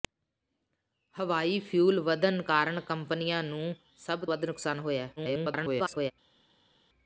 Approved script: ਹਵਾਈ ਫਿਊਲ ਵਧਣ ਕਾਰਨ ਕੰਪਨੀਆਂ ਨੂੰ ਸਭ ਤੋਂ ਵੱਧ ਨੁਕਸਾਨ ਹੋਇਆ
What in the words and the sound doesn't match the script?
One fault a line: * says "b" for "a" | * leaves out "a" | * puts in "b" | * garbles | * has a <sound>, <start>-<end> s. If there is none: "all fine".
* leaves out "ਤੋਂ"
* garbles